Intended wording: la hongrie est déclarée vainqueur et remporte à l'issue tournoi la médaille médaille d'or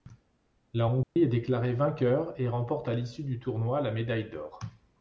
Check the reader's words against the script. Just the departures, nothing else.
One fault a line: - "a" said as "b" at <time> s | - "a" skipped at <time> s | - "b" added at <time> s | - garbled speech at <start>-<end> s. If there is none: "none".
- "du" added at 3.2 s
- "médaille" skipped at 4.3 s